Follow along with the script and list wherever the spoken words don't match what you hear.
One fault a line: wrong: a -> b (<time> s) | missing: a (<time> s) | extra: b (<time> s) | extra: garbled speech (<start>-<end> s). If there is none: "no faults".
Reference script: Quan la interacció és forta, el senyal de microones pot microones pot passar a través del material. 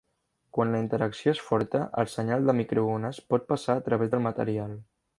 missing: microones pot (3.5 s)